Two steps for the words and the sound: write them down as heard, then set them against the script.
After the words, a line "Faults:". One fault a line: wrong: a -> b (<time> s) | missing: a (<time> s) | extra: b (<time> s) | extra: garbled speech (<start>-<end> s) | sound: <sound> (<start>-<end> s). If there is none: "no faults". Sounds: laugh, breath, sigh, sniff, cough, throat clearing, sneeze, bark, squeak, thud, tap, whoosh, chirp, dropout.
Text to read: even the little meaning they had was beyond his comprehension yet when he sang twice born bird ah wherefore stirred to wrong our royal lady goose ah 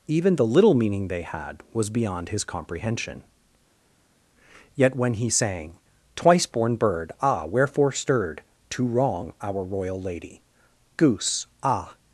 even the little meaning they had was beyond his comprehension yet when he sang twice born bird ah wherefore stirred to wrong our royal lady goose ah
Faults:
no faults